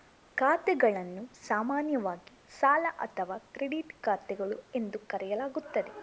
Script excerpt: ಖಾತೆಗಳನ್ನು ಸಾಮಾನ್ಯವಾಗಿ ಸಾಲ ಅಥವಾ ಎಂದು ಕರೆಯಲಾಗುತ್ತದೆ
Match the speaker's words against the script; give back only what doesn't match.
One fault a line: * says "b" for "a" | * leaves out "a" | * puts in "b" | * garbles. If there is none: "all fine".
* puts in "ಕ್ರೆಡಿಟ್ ಖಾತೆಗಳು"